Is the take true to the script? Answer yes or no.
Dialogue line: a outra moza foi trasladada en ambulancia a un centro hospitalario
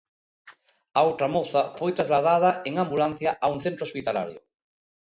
yes